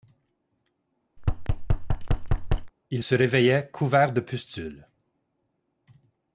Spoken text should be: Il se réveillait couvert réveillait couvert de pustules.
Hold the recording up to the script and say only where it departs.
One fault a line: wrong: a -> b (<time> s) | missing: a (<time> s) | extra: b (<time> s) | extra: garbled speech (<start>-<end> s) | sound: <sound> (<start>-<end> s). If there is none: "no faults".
sound: thud (1.2-2.7 s)
missing: réveillait couvert (4.1 s)